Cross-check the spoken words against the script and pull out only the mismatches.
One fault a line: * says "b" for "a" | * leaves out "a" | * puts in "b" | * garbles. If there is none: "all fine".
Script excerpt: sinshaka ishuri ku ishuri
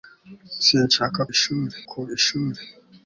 all fine